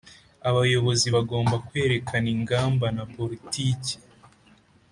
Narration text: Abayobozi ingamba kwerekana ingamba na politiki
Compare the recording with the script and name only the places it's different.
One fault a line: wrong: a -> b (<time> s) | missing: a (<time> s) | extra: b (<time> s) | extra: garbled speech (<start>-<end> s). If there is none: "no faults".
wrong: ingamba -> bagomba (1.1 s)